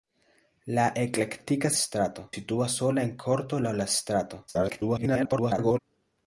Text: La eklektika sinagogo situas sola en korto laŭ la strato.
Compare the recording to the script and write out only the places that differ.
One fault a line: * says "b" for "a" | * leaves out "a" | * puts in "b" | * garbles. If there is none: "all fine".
* says "strato" for "sinagogo"
* garbles